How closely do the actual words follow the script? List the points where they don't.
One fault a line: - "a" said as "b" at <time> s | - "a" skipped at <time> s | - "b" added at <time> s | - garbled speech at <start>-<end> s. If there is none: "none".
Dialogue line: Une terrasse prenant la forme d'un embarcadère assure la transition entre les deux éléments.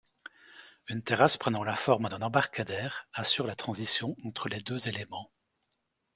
none